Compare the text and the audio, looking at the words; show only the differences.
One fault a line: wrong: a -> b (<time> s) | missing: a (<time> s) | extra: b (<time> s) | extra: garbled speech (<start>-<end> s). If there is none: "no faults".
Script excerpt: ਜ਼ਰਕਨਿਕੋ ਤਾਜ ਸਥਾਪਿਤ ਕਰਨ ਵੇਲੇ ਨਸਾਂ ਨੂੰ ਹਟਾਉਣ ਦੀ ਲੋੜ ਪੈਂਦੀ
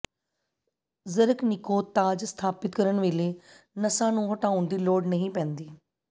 extra: ਨਹੀਂ (5.1 s)